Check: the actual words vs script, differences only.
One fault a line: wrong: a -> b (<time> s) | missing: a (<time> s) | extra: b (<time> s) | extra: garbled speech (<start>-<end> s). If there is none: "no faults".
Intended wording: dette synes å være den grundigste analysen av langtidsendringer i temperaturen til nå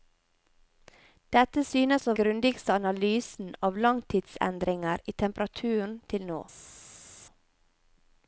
missing: være den (2.1 s)